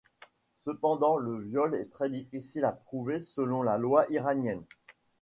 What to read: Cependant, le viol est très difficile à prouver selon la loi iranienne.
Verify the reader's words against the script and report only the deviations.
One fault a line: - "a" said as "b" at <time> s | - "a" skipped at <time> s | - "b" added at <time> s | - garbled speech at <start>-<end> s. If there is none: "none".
none